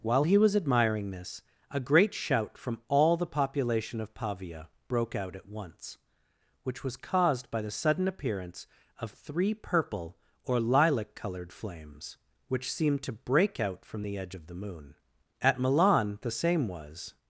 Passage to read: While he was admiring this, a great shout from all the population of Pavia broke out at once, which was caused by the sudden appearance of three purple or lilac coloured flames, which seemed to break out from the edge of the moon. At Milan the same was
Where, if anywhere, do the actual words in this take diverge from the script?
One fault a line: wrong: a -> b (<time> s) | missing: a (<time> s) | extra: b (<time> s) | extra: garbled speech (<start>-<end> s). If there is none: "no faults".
no faults